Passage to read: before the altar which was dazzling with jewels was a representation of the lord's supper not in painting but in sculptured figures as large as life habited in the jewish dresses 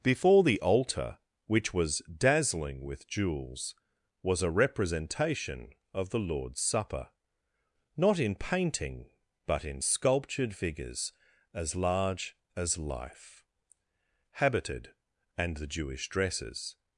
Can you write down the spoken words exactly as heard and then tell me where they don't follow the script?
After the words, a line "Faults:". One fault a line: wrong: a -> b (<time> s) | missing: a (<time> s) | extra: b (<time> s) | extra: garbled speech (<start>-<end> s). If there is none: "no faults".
before the altar which was dazzling with jewels was a representation of the lord's supper not in painting but in sculptured figures as large as life habited and the jewish dresses
Faults:
wrong: in -> and (15.4 s)